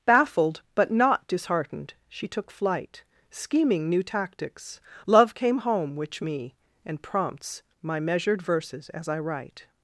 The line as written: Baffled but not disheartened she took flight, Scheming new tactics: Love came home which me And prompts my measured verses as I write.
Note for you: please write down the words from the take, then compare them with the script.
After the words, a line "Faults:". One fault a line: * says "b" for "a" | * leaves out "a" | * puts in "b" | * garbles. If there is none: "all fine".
Baffled but not disheartened she took flight, Scheming new tactics: Love came home which me And prompts my measured verses as I write.
Faults:
all fine